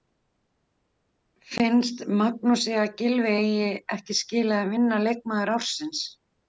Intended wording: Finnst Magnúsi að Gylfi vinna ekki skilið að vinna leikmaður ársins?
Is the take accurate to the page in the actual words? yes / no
no